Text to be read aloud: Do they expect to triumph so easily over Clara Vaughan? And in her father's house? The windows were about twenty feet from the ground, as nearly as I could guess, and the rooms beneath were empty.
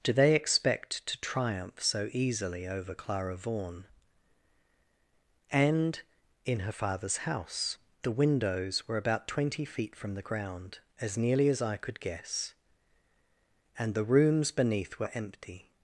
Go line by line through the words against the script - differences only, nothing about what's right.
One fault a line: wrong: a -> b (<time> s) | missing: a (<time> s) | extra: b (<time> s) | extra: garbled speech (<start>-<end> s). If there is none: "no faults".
no faults